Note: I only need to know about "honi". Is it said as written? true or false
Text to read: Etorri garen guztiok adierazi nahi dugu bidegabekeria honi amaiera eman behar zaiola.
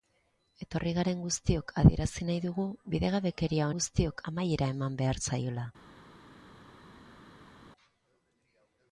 false